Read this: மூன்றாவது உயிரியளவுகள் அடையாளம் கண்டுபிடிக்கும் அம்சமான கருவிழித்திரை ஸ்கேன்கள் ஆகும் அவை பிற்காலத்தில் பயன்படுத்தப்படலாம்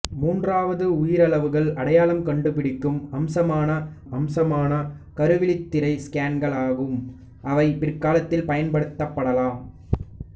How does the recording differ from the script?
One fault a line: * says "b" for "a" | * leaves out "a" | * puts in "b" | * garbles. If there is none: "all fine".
* puts in "அம்சமான"